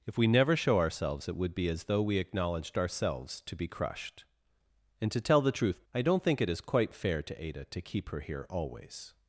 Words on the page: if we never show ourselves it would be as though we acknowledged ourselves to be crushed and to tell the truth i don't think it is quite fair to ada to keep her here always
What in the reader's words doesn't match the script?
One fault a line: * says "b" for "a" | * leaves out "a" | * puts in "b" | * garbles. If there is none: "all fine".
all fine